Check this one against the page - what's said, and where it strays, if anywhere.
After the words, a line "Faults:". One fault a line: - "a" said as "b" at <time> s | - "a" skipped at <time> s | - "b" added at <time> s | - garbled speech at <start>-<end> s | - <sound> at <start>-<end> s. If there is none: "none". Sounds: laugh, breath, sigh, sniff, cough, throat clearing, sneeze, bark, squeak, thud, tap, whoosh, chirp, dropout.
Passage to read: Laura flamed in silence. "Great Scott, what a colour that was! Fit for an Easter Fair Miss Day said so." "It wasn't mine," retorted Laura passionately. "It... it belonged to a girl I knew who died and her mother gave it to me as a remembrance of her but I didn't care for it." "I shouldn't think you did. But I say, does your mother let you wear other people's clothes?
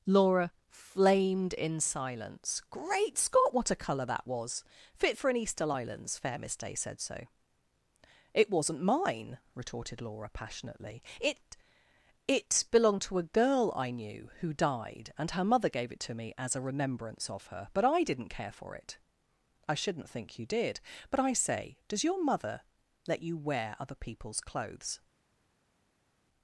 Laura flamed in silence. "Great Scott, what a colour that was! Fit for an Easter islands Fair Miss Day said so." "It wasn't mine," retorted Laura passionately. "It... it belonged to a girl I knew who died and her mother gave it to me as a remembrance of her but I didn't care for it." "I shouldn't think you did. But I say, does your mother let you wear other people's clothes?
Faults:
- "islands" added at 5.7 s